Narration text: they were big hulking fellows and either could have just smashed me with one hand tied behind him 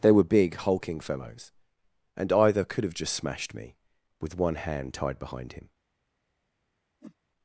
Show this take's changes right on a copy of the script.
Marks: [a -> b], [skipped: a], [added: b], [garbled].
they were big hulking fellows and either could have just smashed me with one hand tied behind him